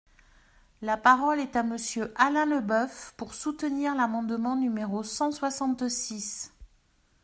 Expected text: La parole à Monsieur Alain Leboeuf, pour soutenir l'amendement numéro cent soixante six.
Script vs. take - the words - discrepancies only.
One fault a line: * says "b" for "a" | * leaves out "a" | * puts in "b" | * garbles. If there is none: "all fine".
* puts in "est"